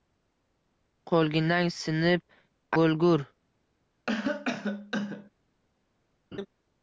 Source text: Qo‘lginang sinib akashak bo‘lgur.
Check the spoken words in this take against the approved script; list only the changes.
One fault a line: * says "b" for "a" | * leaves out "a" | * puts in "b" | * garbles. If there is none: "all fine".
* leaves out "akashak"